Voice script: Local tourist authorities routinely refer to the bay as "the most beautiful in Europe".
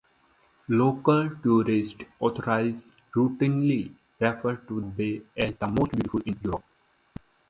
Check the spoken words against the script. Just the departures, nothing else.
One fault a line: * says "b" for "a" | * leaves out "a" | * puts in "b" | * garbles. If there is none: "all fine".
* leaves out "the"